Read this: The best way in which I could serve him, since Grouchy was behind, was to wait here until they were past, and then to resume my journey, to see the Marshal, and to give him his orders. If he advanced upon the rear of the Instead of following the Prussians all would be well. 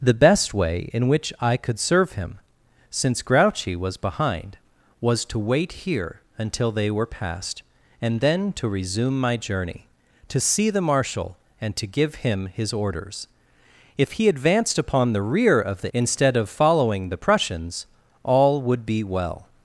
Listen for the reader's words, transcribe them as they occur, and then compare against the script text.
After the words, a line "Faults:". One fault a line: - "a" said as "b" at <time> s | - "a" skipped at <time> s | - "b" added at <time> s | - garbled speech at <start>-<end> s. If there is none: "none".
The best way in which I could serve him, since Grouchy was behind, was to wait here until they were past, and then to resume my journey, to see the Marshal, and to give him his orders. If he advanced upon the rear of the Instead of following the Prussians all would be well.
Faults:
none